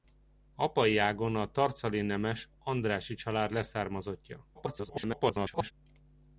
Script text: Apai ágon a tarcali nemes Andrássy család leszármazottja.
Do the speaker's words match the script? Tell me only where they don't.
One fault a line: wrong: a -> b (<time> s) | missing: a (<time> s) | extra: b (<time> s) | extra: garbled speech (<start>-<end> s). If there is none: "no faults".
extra: garbled speech (4.5-5.7 s)